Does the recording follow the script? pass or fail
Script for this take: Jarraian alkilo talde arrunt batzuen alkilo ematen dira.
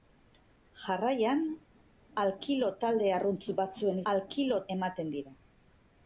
pass